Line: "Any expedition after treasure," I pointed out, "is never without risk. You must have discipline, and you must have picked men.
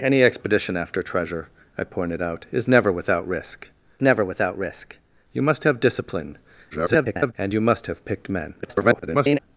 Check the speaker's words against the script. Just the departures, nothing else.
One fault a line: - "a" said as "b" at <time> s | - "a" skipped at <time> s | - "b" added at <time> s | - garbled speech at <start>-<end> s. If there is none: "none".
- "never without risk" added at 4.0 s
- garbled speech at 6.7-7.3 s
- garbled speech at 8.6-9.4 s